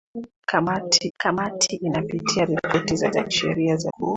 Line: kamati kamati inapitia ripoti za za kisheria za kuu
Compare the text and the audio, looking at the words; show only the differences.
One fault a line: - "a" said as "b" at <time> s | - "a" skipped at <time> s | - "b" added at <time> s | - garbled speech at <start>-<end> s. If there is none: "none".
none